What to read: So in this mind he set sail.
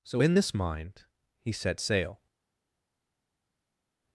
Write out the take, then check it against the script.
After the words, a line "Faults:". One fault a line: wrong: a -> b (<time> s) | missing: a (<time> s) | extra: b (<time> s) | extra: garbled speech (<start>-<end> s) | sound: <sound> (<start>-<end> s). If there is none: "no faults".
So in this mind he set sail.
Faults:
no faults